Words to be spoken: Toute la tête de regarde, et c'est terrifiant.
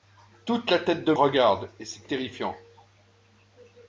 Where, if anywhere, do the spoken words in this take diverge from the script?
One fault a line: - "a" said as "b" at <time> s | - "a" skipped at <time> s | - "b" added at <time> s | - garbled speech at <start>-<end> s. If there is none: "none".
none